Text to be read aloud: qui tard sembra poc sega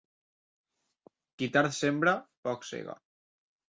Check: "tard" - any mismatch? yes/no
no